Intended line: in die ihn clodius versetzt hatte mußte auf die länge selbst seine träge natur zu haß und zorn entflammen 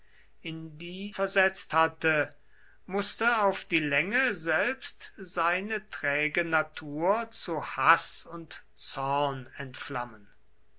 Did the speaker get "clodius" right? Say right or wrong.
wrong